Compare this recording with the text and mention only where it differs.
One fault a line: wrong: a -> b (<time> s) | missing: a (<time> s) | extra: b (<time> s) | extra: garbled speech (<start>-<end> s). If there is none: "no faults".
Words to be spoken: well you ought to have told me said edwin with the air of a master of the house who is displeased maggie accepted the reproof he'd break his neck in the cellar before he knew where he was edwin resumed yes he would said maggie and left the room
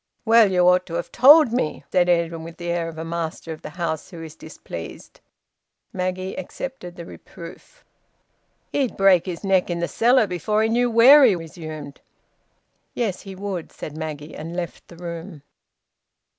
missing: was edwin (11.3 s)